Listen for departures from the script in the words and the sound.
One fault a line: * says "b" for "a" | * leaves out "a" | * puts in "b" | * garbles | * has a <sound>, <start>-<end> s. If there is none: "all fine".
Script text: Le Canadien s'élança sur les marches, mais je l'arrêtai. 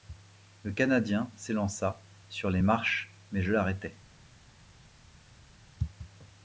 all fine